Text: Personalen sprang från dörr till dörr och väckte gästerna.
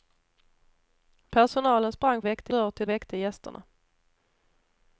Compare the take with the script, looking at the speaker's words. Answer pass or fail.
fail